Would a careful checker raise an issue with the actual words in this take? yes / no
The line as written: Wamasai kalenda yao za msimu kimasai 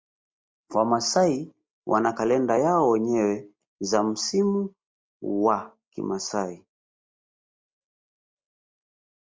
yes